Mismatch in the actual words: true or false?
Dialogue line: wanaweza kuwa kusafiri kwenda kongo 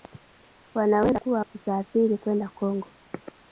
false